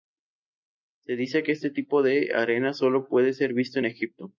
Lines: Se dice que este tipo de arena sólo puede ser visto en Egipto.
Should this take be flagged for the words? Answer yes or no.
no